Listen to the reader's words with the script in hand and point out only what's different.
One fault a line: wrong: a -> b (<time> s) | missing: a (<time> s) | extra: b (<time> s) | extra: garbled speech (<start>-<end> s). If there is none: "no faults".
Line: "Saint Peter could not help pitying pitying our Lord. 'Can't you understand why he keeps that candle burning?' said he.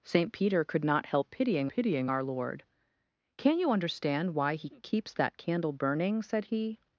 no faults